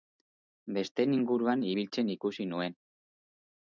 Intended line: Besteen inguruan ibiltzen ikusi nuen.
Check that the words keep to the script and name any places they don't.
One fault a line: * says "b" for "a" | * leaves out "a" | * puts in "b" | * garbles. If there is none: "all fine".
all fine